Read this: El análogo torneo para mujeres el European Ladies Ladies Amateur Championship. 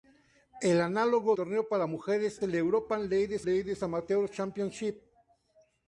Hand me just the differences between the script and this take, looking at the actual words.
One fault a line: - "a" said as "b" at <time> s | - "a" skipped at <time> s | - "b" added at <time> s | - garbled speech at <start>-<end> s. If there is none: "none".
none